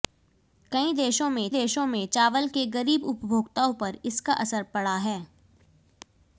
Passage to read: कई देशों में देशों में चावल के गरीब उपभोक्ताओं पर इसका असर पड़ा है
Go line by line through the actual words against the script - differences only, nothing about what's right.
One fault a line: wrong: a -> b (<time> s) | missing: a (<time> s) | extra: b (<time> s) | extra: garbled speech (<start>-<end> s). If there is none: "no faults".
no faults